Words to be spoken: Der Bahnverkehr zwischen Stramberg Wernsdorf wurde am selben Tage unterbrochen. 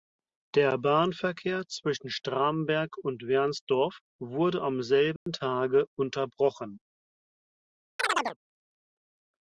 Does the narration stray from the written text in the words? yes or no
yes